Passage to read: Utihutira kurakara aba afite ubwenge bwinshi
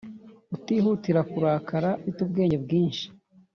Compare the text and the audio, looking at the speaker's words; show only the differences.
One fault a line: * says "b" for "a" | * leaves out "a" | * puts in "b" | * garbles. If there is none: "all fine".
* leaves out "aba"